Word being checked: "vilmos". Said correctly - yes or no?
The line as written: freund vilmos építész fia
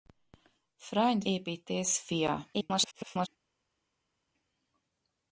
no